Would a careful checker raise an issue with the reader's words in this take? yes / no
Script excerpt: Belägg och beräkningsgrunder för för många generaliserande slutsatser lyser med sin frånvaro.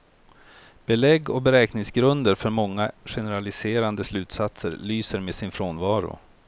yes